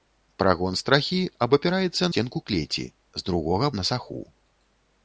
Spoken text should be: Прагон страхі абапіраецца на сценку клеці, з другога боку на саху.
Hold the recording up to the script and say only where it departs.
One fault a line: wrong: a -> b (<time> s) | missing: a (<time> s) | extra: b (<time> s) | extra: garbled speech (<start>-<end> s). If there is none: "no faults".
missing: на (2.1 s)
missing: боку (3.7 s)